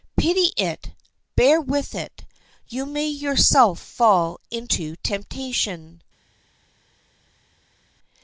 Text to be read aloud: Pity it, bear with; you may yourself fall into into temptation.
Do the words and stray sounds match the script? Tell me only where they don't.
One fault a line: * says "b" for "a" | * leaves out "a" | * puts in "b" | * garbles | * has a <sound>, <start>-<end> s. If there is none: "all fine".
* puts in "it"
* leaves out "into"